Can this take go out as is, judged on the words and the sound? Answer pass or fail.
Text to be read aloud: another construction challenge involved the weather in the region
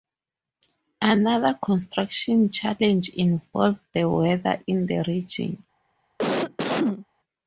fail